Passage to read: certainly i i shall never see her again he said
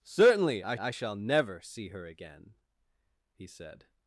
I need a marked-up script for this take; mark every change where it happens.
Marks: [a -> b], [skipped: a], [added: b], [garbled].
certainly i i shall never see her again he said